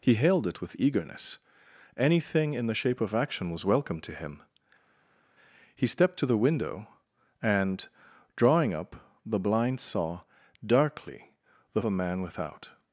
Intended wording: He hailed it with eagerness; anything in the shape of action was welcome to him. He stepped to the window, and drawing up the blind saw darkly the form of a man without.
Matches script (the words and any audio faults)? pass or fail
fail